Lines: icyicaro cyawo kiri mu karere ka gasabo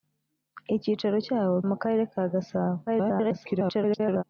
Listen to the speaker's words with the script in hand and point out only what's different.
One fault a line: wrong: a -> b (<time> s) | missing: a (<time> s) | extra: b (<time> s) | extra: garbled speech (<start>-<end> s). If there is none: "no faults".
missing: kiri (1.6 s)
extra: garbled speech (2.9-4.2 s)